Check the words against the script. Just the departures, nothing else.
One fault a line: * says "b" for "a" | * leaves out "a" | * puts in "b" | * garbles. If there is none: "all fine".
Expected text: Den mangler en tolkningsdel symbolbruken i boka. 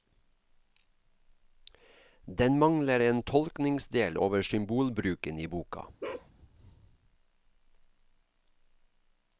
* puts in "over"